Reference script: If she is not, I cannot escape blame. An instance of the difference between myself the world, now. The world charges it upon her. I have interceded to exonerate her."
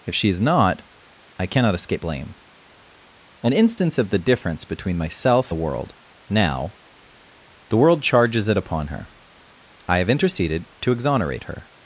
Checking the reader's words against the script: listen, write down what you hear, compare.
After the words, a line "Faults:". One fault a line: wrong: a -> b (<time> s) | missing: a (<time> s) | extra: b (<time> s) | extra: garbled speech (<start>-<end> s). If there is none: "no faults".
If she is not, I cannot escape blame. An instance of the difference between myself the world, now. The world charges it upon her. I have interceded to exonerate her."
Faults:
no faults